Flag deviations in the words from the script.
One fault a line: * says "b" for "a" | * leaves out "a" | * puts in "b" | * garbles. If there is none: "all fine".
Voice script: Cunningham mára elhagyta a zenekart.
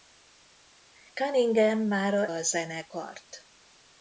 * leaves out "elhagyta"